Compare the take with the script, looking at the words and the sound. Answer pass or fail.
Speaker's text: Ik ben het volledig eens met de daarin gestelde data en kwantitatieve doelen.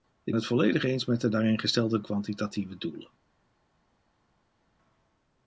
fail